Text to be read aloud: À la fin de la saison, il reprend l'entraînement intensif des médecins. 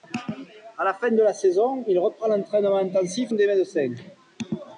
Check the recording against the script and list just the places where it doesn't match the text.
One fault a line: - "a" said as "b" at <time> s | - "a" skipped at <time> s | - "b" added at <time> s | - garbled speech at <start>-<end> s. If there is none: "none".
none